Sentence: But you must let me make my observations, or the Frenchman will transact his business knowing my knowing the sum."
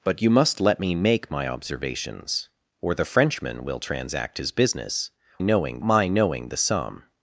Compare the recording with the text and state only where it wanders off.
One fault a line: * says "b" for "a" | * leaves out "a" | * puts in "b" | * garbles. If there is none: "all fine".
all fine